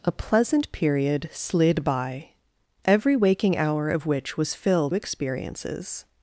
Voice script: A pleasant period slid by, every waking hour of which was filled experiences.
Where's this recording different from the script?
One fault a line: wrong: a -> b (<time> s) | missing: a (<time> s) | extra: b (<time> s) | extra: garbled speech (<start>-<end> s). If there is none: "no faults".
no faults